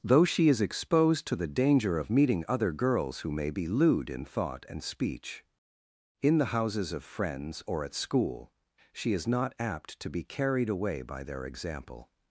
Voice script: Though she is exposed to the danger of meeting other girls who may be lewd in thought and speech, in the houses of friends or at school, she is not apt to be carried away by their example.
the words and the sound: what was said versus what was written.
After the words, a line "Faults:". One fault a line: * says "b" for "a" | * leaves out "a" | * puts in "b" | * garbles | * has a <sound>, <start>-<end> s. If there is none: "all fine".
Though she is exposed to the danger of meeting other girls who may be lewd in thought and speech, in the houses of friends or at school, she is not apt to be carried away by their example.
Faults:
all fine